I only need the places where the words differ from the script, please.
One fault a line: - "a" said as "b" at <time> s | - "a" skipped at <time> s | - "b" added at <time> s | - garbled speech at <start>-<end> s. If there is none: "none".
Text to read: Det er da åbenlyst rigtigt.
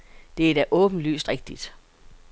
none